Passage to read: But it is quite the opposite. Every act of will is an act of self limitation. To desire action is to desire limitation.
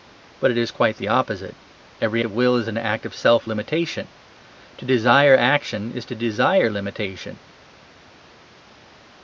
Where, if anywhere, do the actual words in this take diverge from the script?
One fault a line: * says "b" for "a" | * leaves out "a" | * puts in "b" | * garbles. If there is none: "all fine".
* leaves out "act"